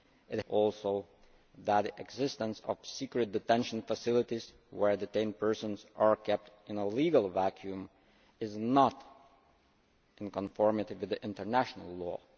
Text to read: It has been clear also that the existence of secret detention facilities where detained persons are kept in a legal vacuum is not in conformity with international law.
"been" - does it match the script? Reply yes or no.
no